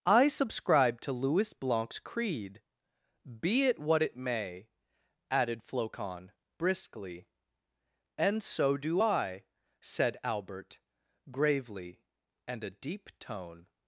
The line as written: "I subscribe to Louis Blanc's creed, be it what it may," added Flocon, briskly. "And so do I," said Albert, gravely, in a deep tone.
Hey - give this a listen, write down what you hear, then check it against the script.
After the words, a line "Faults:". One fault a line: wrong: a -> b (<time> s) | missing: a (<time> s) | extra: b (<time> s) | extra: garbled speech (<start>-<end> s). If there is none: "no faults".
"I subscribe to Louis Blanc's creed, be it what it may," added Flocon, briskly. "And so do I," said Albert, gravely, and a deep tone.
Faults:
wrong: in -> and (12.5 s)